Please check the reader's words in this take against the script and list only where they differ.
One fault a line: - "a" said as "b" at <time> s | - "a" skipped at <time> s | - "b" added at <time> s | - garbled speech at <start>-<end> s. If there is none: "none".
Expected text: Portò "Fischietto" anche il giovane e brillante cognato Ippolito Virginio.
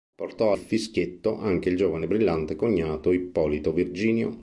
none